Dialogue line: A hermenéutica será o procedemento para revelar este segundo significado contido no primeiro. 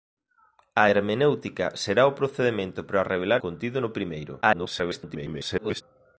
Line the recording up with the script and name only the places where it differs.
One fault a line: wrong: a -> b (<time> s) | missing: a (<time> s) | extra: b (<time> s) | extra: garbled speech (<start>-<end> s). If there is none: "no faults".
missing: este segundo significado (3.4 s)
extra: garbled speech (4.4-5.8 s)